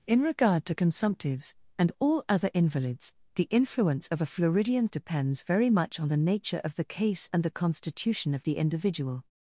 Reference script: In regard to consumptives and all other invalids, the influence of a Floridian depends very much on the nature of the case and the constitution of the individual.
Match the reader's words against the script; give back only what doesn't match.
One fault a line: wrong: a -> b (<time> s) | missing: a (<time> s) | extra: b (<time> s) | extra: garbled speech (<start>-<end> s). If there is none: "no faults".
no faults